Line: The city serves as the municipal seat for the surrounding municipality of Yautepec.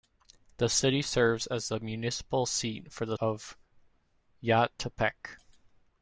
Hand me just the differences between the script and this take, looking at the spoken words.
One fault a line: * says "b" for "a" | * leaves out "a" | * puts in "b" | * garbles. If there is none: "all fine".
* leaves out "surrounding municipality"